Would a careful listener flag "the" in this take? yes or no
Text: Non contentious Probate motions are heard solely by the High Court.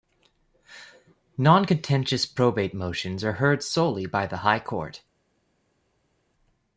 no